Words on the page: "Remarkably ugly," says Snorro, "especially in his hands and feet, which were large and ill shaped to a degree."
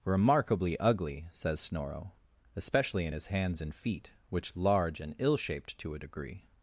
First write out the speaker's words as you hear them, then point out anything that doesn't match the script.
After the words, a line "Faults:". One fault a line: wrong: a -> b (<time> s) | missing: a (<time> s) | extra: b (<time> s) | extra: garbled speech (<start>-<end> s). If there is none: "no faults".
"Remarkably ugly," says Snorro, "especially in his hands and feet, which large and ill shaped to a degree."
Faults:
missing: were (4.5 s)